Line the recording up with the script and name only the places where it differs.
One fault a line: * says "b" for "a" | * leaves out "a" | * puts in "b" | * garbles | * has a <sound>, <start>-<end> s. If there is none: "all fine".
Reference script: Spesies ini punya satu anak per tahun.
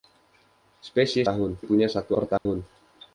* says "tahun" for "ini"
* leaves out "anak"
* has a dropout, 2.4-2.5 s